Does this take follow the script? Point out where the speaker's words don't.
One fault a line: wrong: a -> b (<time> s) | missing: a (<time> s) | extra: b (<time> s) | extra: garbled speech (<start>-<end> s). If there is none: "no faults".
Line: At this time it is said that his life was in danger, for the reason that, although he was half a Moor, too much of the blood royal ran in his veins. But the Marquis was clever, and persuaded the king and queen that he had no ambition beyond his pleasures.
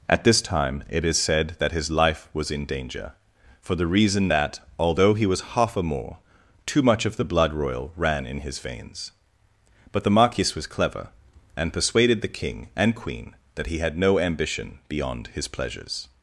no faults